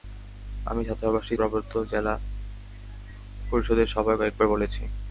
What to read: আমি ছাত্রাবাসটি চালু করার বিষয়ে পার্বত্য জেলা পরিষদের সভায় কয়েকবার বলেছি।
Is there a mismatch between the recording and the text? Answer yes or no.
yes